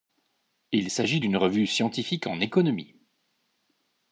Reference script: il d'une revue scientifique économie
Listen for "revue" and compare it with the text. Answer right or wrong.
right